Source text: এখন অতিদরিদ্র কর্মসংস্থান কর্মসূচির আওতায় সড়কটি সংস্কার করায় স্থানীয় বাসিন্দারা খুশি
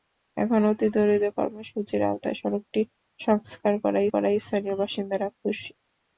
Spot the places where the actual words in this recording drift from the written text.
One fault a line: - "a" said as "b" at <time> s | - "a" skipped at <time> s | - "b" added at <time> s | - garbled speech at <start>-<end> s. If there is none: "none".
- "কর্মসংস্থান" skipped at 1.3 s
- "করায়" added at 4.1 s